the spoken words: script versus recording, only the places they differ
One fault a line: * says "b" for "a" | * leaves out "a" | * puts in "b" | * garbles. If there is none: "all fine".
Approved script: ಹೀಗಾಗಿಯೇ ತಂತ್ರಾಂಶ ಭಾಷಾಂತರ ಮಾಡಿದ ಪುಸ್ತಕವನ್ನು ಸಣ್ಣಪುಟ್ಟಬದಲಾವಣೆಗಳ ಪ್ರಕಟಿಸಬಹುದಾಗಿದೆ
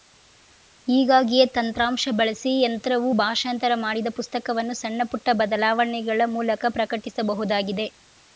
* puts in "ಬಳಸಿ ಯಂತ್ರವು"
* puts in "ಮೂಲಕ"